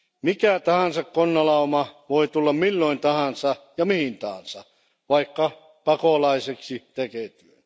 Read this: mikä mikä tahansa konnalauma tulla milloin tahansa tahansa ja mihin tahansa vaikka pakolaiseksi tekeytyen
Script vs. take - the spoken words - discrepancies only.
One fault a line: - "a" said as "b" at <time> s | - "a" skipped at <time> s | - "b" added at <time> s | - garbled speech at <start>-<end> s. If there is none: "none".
- "mikä" skipped at 0.6 s
- "voi" added at 2.1 s
- "tahansa" skipped at 3.5 s